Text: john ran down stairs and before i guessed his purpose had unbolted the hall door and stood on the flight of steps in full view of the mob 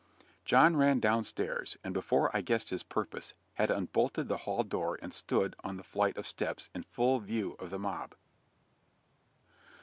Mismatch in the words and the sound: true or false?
false